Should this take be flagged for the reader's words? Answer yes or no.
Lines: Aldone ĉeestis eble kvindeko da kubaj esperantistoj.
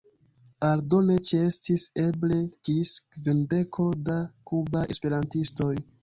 yes